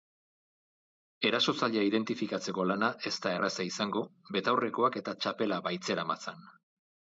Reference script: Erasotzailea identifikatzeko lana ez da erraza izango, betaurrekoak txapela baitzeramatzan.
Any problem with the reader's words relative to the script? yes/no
yes